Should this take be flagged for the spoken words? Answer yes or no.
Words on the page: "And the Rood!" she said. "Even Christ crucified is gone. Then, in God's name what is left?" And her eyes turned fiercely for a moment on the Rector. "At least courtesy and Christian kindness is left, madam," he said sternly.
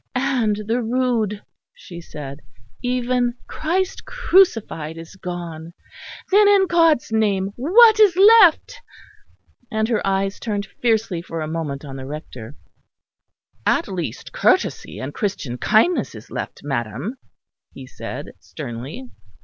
no